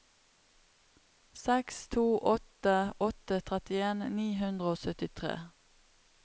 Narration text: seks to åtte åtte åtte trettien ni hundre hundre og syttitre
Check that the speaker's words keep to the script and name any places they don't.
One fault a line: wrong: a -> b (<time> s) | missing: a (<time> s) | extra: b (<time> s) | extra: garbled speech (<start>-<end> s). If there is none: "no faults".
missing: åtte (3.4 s)
missing: hundre (4.7 s)